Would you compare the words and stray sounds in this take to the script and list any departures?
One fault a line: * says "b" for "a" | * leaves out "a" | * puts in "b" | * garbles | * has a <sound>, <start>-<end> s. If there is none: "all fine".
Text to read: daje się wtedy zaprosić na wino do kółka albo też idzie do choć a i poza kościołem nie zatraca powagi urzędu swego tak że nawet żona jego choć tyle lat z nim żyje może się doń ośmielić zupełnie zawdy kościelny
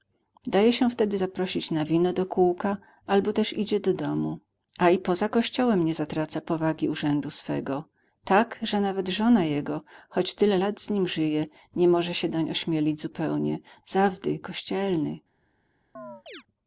* says "domu" for "choć"
* puts in "nie"
* has a chirp, 16.0-16.4 s